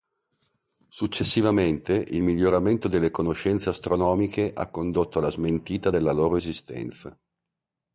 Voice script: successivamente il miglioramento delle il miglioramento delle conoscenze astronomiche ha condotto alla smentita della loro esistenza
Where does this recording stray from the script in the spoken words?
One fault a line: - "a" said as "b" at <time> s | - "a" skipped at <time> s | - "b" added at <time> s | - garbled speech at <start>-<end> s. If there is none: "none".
- "il miglioramento delle" skipped at 3.1 s